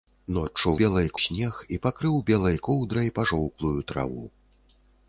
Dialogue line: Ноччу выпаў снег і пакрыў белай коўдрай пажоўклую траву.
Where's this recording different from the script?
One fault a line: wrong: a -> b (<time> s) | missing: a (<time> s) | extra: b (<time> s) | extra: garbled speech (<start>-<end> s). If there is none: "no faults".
wrong: выпаў -> белай (0.8 s)